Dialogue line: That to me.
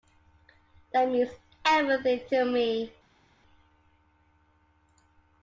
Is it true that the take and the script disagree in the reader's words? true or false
true